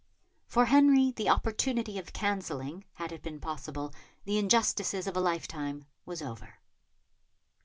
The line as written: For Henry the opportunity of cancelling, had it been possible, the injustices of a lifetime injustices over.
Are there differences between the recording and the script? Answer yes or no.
yes